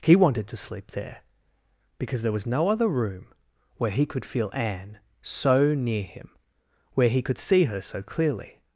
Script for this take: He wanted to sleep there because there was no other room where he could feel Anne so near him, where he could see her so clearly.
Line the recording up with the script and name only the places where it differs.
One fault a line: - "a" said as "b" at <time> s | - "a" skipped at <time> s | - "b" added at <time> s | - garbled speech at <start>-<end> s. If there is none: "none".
none